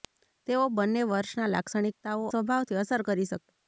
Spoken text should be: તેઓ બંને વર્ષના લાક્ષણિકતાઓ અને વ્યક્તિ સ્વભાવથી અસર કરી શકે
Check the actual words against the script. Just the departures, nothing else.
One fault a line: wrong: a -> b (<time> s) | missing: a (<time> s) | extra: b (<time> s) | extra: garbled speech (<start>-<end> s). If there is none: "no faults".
missing: અને વ્યક્તિ (2.2 s)